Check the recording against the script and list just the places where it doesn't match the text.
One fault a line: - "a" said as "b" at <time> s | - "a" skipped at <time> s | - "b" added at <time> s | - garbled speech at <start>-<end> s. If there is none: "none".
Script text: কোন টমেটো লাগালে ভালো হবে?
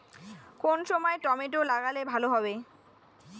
- "সময়" added at 0.8 s